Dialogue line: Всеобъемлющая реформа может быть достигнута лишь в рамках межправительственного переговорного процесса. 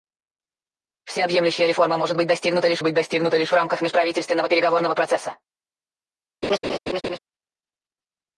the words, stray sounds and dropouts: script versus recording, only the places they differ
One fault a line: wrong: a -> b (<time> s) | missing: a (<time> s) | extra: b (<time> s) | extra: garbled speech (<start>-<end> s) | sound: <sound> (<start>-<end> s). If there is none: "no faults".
extra: быть достигнута лишь (2.8 s)
sound: laugh (6.4-7.2 s)